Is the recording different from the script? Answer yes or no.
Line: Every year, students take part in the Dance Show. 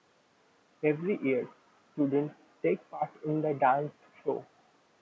no